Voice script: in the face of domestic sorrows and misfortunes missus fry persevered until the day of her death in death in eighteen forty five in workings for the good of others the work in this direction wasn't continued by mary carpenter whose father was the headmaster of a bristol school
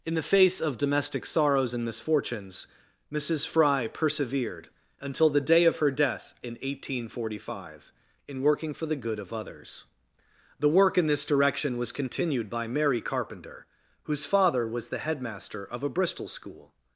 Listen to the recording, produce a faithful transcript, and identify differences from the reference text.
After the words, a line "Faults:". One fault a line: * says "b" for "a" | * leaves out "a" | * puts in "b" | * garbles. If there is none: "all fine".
in the face of domestic sorrows and misfortunes missus fry persevered until the day of her death in eighteen forty five in working for the good of others the work in this direction was continued by mary carpenter whose father was the headmaster of a bristol school
Faults:
* leaves out "death in"
* says "working" for "workings"
* says "was" for "wasn't"